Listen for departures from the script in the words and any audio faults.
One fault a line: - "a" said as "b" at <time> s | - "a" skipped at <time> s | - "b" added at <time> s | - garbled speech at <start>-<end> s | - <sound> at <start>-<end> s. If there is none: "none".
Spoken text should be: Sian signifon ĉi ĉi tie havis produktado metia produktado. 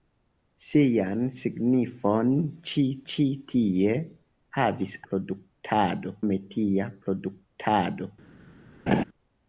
- laugh at 8.9-9.0 s